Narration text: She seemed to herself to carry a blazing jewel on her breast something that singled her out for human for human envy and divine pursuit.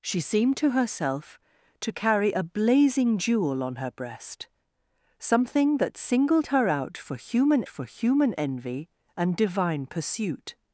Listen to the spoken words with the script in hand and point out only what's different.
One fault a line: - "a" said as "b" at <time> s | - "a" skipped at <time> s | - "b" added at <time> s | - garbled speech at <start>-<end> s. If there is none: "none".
none